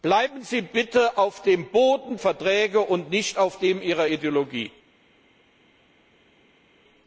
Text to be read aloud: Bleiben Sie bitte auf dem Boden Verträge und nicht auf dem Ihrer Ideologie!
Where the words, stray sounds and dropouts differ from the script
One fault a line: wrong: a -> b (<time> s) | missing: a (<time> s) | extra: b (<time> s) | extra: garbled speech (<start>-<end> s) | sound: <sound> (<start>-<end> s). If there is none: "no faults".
no faults